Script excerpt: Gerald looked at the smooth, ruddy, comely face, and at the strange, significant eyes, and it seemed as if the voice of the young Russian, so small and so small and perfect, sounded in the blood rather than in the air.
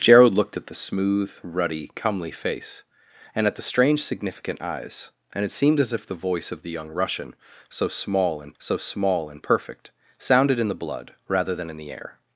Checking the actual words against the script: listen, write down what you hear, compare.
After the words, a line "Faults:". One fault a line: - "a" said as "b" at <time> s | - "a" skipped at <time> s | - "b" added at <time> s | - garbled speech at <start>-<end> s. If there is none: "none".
Gerald looked at the smooth, ruddy, comely face, and at the strange, significant eyes, and it seemed as if the voice of the young Russian, so small and so small and perfect, sounded in the blood rather than in the air.
Faults:
none